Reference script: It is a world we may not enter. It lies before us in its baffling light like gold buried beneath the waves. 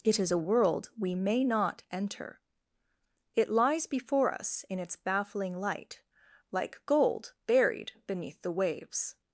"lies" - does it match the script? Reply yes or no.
yes